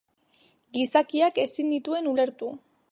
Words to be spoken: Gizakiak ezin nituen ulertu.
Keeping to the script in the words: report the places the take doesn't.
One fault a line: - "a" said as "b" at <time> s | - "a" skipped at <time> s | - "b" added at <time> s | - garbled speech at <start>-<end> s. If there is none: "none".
none